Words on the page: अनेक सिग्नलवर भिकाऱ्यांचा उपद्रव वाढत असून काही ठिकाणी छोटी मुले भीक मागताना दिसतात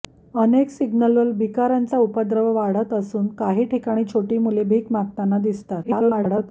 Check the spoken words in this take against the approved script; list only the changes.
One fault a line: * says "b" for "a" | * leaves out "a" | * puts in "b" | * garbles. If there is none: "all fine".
* garbles